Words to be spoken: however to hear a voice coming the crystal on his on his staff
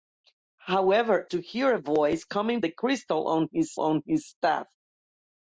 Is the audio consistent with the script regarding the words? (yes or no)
yes